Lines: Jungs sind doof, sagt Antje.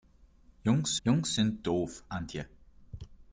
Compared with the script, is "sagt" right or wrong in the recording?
wrong